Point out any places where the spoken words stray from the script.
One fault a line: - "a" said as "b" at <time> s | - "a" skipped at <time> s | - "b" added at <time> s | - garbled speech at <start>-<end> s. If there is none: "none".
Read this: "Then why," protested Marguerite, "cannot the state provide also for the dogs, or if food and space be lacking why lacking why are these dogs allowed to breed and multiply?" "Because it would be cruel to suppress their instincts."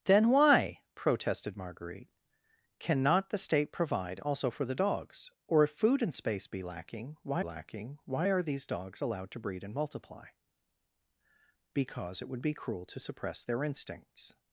none